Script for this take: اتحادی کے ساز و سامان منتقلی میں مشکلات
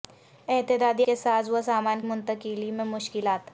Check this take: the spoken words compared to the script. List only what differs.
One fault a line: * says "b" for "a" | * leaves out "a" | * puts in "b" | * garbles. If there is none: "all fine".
all fine